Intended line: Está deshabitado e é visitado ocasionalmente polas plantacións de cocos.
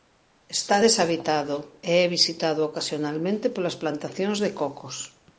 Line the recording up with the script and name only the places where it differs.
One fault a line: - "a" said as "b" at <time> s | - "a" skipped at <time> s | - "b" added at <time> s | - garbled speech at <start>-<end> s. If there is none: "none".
none